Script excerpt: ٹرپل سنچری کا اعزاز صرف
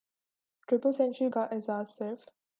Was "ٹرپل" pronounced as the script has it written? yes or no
yes